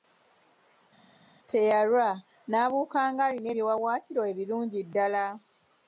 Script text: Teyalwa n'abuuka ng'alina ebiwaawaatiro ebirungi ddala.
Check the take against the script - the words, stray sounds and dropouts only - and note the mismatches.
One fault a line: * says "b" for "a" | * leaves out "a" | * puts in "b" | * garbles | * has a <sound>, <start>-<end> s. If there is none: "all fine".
all fine